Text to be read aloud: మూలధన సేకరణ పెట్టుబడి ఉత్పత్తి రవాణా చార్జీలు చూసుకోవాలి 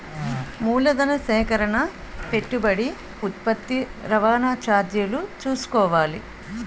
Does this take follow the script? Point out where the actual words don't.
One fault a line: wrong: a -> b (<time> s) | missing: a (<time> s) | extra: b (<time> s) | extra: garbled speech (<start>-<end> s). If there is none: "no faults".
no faults